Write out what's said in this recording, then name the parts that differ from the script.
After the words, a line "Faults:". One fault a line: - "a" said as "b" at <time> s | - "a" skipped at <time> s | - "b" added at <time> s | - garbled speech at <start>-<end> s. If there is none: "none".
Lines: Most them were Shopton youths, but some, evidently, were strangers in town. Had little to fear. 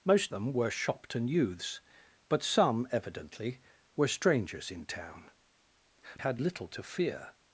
Most them were Shopton youths, but some, evidently, were strangers in town. Had little to fear.
Faults:
none